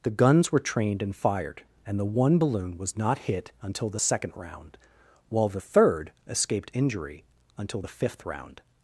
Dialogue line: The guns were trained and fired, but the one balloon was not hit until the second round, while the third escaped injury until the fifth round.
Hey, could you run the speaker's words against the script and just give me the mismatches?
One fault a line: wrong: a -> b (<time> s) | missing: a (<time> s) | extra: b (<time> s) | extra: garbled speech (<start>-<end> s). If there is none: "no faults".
wrong: but -> and (1.9 s)